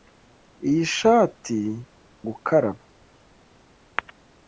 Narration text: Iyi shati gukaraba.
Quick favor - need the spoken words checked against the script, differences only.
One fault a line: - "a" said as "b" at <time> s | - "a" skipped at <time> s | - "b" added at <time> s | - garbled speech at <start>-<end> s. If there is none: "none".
none